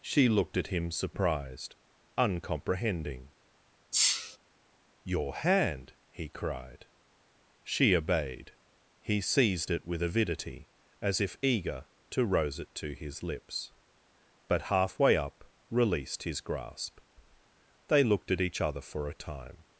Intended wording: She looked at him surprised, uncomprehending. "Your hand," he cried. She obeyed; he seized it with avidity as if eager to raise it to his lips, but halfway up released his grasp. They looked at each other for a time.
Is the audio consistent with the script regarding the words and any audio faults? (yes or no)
no